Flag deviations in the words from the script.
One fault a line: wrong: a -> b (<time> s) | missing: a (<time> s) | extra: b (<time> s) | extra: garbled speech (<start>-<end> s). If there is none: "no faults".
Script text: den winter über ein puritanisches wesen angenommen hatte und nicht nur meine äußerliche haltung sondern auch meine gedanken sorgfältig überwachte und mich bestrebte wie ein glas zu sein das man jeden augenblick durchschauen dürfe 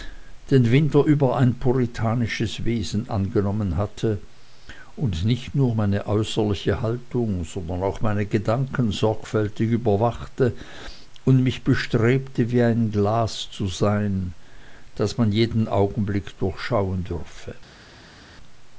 no faults